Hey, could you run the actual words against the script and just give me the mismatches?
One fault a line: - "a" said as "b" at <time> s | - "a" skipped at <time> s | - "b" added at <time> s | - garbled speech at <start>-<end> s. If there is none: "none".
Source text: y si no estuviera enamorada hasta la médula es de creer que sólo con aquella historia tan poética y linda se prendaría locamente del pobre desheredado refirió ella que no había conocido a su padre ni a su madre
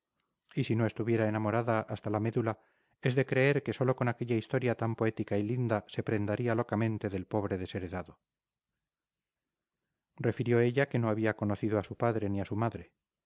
none